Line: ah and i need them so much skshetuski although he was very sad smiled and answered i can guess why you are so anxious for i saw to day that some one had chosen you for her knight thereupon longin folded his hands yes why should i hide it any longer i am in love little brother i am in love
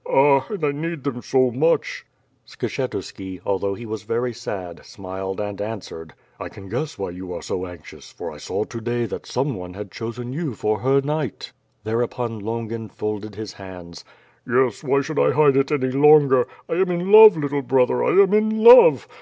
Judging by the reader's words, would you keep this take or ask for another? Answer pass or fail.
pass